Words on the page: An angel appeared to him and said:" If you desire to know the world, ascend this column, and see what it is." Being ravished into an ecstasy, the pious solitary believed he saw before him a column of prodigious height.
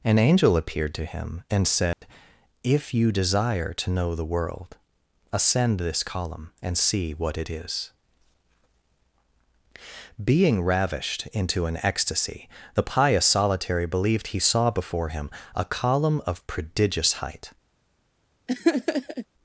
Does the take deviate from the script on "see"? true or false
false